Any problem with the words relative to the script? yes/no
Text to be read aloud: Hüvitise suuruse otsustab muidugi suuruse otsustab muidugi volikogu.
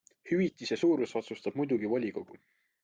yes